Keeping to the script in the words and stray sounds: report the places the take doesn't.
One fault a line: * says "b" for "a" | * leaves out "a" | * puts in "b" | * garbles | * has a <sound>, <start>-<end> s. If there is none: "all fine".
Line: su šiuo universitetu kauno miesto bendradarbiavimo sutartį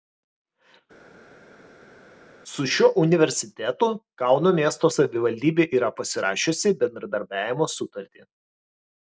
* puts in "savivaldybė yra pasirašiusi"